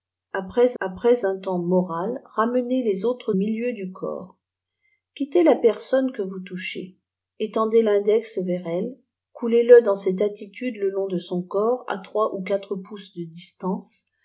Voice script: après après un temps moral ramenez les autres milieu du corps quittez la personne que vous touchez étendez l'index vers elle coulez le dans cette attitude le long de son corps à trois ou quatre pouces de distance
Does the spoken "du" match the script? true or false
true